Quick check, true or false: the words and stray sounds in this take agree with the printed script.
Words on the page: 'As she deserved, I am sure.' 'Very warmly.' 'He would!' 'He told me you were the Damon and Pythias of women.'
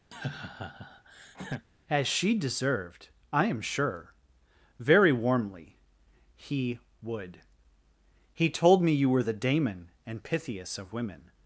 false